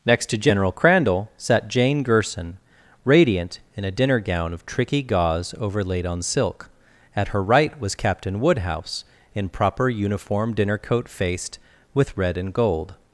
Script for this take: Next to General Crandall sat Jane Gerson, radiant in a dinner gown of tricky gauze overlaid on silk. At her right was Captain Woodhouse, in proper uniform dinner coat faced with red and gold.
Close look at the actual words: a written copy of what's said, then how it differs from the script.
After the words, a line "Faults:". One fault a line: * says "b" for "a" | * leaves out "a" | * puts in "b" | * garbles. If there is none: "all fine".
Next to General Crandall sat Jane Gerson, radiant in a dinner gown of tricky gauze overlaid on silk. At her right was Captain Woodhouse, in proper uniform dinner coat faced with red and gold.
Faults:
all fine